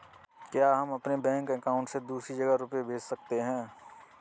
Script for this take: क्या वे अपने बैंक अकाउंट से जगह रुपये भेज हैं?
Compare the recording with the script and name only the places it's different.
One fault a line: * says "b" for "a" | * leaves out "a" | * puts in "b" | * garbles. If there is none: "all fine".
* says "हम" for "वे"
* puts in "दूसरी"
* puts in "सकते"